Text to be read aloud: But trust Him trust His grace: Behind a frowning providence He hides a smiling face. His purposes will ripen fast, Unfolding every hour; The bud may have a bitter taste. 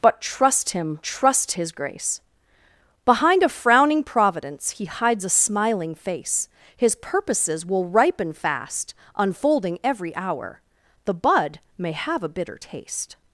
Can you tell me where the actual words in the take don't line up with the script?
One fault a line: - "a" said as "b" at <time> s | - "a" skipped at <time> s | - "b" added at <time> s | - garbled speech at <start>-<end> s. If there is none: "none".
none